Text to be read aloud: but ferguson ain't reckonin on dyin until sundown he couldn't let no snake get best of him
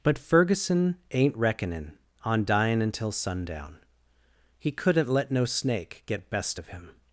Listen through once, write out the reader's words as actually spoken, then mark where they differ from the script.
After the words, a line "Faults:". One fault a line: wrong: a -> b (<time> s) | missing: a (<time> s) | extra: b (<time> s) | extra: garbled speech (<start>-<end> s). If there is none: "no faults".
but ferguson ain't reckonin on dyin until sundown he couldn't let no snake get best of him
Faults:
no faults